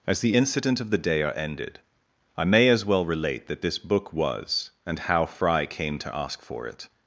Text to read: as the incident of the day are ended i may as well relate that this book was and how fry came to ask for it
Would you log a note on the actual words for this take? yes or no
no